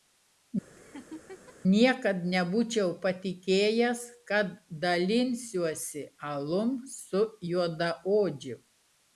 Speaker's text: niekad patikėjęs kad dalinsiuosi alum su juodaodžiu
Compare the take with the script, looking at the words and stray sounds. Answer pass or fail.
fail